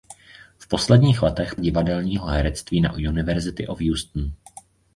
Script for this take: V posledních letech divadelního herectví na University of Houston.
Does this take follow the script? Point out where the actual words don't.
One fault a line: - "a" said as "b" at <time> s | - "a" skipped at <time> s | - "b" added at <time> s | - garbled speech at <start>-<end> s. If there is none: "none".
none